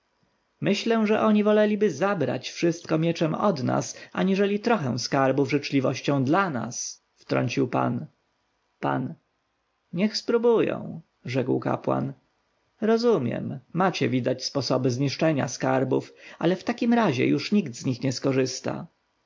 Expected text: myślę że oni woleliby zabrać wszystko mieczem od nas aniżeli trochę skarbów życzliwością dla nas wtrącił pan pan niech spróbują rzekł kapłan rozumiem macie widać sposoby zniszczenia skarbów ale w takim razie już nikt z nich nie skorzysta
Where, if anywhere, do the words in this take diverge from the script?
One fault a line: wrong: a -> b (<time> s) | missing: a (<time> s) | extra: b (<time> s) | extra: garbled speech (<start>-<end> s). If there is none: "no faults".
no faults